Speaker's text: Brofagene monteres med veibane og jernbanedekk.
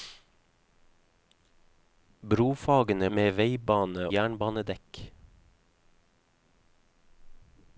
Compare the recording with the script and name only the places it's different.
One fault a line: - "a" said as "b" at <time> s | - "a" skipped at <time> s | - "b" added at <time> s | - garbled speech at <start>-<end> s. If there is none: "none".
- "monteres" skipped at 3.1 s
- "og" skipped at 4.1 s